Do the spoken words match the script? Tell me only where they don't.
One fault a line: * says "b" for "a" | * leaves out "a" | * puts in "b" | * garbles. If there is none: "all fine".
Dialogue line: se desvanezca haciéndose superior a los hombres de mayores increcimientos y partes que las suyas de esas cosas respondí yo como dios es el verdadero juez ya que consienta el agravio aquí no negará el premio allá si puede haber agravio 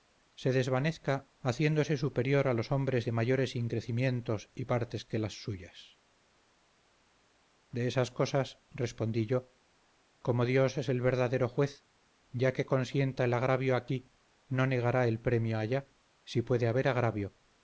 all fine